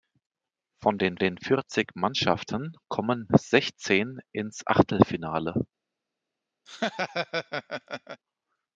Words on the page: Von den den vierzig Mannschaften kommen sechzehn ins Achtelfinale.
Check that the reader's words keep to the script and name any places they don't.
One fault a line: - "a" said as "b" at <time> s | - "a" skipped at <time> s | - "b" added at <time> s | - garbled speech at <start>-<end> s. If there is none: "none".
none